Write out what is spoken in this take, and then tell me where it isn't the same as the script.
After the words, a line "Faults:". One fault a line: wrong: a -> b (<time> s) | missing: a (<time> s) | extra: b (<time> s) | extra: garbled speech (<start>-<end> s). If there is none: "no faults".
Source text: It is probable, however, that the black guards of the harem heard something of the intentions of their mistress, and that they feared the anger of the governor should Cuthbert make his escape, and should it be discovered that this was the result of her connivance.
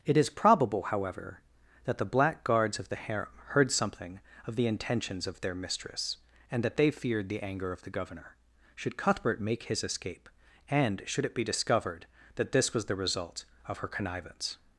It is probable, however, that the black guards of the harem heard something of the intentions of their mistress, and that they feared the anger of the governor should Cuthbert make his escape, and should it be discovered that this was the result of her connivance.
Faults:
no faults